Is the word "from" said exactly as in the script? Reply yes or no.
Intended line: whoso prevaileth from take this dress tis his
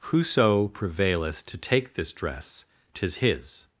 no